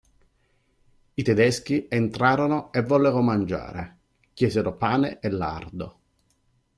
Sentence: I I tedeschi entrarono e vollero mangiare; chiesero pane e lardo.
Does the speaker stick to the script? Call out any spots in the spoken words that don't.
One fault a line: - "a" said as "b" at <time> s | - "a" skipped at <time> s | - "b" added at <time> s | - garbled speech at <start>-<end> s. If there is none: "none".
- "I" skipped at 1.2 s